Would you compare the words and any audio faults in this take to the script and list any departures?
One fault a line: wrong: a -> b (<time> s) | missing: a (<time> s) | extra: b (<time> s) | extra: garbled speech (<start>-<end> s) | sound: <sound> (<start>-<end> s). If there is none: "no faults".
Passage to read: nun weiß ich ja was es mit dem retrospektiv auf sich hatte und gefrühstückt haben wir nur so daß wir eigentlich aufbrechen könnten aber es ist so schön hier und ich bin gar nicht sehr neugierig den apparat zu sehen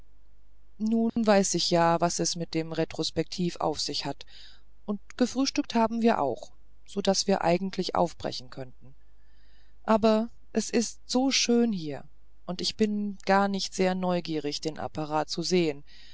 sound: dropout (1.1-1.2 s)
wrong: hatte -> hat (4.0 s)
wrong: nur -> auch (6.2 s)